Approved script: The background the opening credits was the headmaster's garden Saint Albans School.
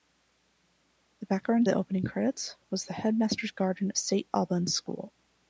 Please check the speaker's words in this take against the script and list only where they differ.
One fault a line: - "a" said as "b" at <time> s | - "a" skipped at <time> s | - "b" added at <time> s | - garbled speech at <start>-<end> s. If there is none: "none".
none